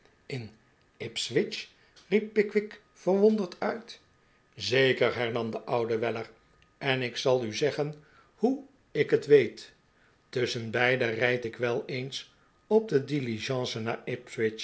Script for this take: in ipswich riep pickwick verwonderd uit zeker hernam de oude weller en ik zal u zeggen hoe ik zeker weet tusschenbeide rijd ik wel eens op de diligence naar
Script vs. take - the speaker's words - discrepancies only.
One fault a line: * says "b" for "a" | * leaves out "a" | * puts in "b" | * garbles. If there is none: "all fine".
* says "het" for "zeker"